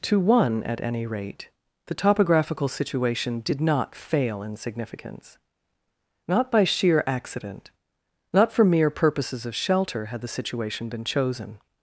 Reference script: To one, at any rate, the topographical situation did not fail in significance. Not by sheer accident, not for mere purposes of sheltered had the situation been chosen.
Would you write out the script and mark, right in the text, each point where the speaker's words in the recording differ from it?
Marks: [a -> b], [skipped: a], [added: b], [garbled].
To one, at any rate, the topographical situation did not fail in significance. Not by sheer accident, not for mere purposes of [sheltered -> shelter] had the situation been chosen.